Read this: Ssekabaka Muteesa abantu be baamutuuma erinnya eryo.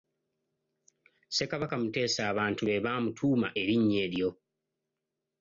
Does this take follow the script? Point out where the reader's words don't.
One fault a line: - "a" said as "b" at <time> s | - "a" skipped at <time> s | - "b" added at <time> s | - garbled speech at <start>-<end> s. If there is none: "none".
none